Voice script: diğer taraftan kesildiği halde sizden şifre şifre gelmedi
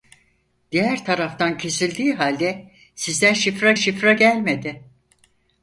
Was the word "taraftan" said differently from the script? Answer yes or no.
no